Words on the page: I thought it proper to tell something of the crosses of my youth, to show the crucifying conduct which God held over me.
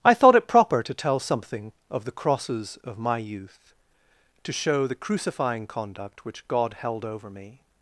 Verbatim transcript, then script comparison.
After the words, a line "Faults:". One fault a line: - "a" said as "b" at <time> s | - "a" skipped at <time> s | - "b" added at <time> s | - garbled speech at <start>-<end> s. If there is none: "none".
I thought it proper to tell something of the crosses of my youth, to show the crucifying conduct which God held over me.
Faults:
none